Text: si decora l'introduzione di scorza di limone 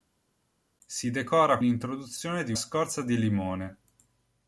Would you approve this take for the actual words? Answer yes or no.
yes